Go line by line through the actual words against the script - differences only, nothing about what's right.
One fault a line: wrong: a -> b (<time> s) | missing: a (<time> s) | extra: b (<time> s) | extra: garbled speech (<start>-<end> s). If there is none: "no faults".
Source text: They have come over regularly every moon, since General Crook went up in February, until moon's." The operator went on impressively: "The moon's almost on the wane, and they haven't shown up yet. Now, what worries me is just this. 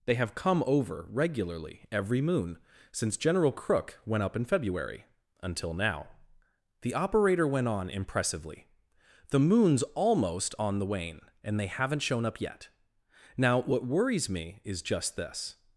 wrong: moon's -> now (5.7 s)